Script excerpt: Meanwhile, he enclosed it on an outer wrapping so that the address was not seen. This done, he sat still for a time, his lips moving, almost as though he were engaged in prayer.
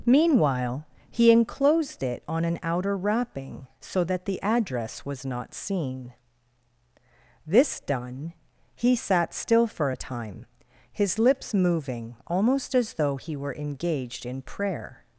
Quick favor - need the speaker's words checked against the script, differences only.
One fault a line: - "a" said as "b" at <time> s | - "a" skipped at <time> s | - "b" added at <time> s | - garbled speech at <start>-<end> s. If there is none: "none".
none